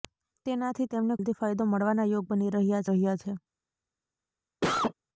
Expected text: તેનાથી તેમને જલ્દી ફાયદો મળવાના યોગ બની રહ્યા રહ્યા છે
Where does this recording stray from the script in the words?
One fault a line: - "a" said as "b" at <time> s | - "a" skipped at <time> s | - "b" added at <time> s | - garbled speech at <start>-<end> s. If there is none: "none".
none